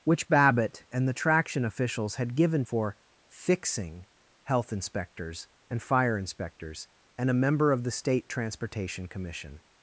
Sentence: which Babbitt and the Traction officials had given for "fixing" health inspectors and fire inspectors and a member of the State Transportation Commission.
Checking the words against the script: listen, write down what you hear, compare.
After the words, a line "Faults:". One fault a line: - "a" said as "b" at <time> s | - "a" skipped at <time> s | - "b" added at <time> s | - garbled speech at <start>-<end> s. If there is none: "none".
which Babbitt and the Traction officials had given for "fixing" health inspectors and fire inspectors and a member of the State Transportation Commission.
Faults:
none